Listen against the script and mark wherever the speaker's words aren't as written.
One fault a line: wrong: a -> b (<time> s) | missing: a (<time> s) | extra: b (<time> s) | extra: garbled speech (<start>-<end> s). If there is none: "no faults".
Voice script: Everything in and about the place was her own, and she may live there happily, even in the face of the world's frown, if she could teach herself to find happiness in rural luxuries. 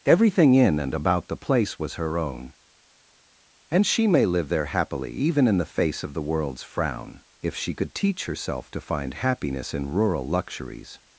no faults